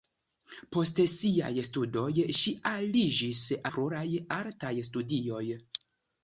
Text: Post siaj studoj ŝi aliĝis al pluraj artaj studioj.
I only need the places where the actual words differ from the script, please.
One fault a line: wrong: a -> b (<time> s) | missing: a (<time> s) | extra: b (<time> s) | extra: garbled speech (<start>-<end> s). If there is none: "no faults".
missing: al (3.5 s)